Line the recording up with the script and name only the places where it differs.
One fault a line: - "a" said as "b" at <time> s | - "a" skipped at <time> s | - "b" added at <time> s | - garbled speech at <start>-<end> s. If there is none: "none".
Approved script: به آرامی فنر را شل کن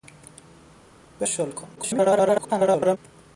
- "آرامی فنر را" skipped at 1.3 s
- garbled speech at 1.8-3.0 s